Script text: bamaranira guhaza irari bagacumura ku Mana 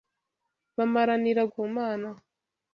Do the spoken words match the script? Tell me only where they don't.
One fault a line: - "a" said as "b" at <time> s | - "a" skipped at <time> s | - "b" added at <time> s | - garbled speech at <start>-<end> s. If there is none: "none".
- "guhaza irari bagacumura" skipped at 1.4 s